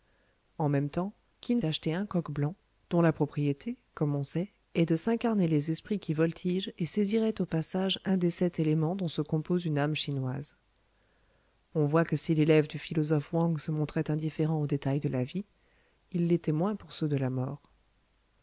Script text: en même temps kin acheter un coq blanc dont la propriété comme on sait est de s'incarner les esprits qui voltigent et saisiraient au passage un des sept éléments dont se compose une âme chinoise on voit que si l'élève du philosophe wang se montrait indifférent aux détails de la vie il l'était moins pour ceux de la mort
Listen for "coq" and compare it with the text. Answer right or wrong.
right